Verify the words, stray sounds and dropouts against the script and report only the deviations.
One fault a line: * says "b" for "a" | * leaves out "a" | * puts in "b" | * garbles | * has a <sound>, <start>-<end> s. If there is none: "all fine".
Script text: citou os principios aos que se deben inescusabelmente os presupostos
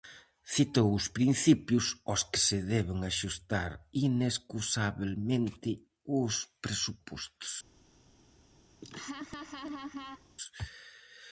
* puts in "axustar"
* has a laugh, 8.8-10.3 s